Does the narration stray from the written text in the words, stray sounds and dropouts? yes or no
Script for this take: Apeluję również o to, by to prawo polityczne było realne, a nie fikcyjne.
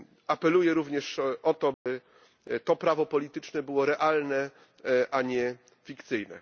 yes